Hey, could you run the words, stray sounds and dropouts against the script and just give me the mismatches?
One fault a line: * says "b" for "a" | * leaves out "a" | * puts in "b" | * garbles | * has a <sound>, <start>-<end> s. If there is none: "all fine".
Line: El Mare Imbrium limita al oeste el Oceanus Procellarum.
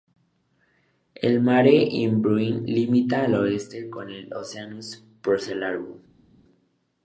* puts in "con"